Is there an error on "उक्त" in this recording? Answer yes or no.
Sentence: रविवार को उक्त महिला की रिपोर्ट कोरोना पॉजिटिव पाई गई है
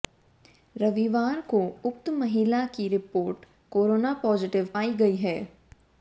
no